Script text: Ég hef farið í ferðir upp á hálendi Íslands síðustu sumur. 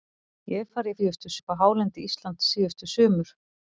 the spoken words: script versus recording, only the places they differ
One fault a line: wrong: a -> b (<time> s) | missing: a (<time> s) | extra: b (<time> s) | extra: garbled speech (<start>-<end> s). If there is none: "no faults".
wrong: ferðir -> síðustu (1.0 s)